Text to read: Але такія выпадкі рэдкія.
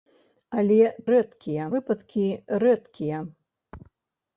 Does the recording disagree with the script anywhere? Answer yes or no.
yes